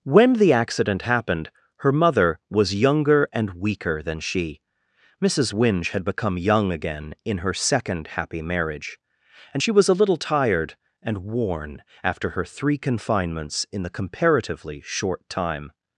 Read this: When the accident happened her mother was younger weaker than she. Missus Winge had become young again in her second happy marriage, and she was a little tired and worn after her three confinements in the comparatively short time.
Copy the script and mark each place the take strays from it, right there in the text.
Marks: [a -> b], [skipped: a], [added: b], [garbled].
When the accident happened her mother was younger [added: and] weaker than she. Missus Winge had become young again in her second happy marriage, and she was a little tired and worn after her three confinements in the comparatively short time.